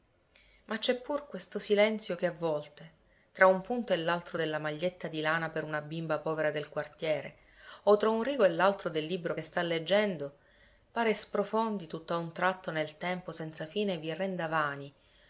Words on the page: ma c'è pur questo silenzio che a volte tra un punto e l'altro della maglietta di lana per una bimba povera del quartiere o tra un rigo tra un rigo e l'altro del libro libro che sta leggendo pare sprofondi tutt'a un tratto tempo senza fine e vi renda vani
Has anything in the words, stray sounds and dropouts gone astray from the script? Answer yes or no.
yes